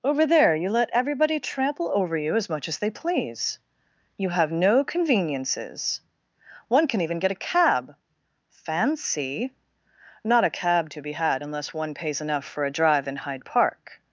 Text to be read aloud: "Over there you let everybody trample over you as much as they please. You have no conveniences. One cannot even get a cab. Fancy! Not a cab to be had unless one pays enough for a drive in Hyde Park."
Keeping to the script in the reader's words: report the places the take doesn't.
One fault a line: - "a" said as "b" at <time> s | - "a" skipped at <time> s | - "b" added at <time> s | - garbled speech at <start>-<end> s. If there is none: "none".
- "cannot" said as "can" at 6.9 s